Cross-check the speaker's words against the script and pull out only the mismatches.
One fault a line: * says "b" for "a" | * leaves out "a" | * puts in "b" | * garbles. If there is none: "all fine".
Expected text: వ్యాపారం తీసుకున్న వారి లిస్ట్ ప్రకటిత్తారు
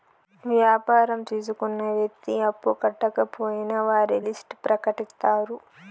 * puts in "వ్యక్తి అప్పు కట్టకపోయినా"